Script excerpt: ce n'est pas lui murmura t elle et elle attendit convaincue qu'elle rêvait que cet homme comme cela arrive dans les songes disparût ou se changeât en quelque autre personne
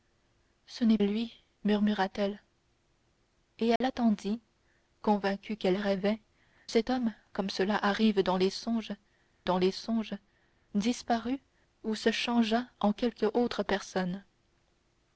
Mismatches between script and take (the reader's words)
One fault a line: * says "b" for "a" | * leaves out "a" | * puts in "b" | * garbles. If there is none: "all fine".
* leaves out "pas"
* leaves out "que"
* puts in "dans les songes"